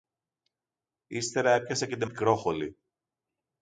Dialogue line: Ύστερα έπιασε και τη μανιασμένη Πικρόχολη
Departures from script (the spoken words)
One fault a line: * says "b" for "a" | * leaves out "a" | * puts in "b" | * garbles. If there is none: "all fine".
* leaves out "μανιασμένη"